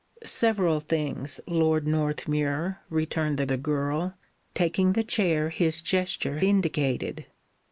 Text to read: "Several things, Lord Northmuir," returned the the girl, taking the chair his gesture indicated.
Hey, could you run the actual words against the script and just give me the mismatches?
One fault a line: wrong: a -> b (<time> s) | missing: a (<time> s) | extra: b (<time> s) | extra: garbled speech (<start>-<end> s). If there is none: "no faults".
no faults